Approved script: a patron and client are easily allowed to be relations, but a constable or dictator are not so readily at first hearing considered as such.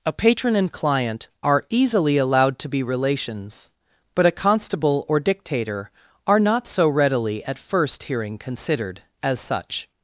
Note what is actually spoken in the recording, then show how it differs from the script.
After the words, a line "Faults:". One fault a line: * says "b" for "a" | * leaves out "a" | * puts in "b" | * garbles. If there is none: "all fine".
a patron and client are easily allowed to be relations, but a constable or dictator are not so readily at first hearing considered as such.
Faults:
all fine